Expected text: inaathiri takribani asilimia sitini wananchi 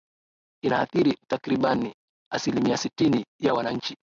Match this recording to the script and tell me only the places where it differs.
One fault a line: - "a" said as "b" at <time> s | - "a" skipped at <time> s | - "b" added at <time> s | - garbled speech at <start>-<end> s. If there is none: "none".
- "ya" added at 3.4 s